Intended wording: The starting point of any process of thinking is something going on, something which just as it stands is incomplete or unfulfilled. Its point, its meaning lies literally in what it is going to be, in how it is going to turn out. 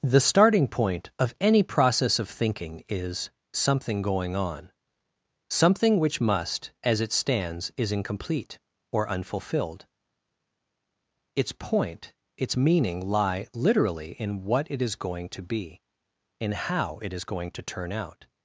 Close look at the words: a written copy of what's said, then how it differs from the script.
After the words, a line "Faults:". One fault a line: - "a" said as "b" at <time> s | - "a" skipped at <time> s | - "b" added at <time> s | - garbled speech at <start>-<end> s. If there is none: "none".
The starting point of any process of thinking is something going on, something which must as it stands is incomplete or unfulfilled. Its point, its meaning lie literally in what it is going to be, in how it is going to turn out.
Faults:
- "just" said as "must" at 6.2 s
- "lies" said as "lie" at 13.1 s